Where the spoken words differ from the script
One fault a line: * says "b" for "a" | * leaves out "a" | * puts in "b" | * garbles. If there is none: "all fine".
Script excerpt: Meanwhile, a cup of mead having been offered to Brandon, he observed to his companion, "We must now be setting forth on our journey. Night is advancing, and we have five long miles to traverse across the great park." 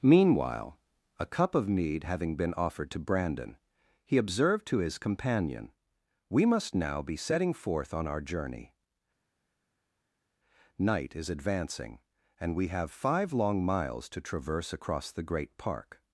all fine